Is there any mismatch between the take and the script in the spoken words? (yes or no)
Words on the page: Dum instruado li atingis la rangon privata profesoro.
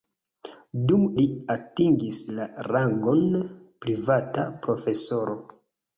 yes